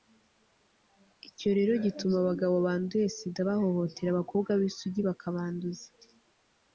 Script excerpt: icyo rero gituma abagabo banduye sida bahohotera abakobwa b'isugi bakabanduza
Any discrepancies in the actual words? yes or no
no